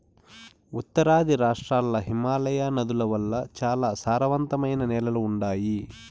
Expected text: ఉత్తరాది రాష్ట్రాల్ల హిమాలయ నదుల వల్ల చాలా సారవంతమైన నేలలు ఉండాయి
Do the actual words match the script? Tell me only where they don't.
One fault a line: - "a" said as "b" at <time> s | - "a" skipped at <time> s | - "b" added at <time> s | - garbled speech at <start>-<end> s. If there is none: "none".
none